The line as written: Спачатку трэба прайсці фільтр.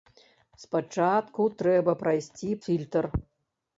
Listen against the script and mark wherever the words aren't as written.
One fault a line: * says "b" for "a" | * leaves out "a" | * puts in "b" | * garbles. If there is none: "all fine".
all fine